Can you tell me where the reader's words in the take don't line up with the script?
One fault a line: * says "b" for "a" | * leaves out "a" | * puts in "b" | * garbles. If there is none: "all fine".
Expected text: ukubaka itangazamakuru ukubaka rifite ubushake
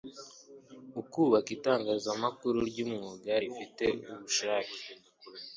* says "ry'umwuga" for "ukubaka"